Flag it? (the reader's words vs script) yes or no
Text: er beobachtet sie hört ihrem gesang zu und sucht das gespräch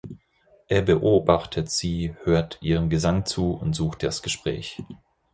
no